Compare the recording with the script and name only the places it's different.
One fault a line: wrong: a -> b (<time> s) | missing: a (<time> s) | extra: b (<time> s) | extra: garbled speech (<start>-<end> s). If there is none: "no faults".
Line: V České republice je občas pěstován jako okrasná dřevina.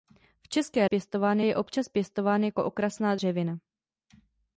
wrong: republice -> pěstován (0.8 s)